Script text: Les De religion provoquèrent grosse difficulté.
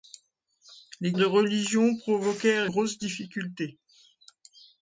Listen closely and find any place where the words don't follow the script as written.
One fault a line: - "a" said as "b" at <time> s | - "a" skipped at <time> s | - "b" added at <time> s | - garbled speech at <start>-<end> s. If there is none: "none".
none